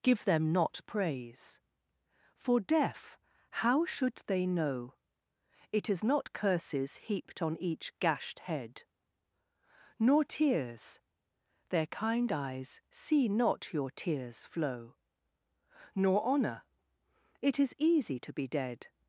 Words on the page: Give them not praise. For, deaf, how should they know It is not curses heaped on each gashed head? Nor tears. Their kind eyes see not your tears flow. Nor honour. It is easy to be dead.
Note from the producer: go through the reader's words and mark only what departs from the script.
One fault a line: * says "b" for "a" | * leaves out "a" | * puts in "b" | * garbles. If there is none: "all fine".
all fine